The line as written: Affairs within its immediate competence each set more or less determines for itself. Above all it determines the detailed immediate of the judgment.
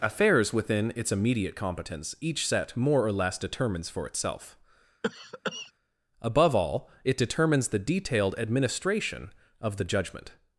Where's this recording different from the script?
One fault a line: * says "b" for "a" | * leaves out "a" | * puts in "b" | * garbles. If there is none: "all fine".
* says "administration" for "immediate"